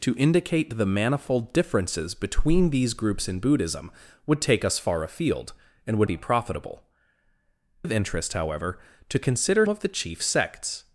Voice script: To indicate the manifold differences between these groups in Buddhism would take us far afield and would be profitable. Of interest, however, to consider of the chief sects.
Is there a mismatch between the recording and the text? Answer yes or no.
no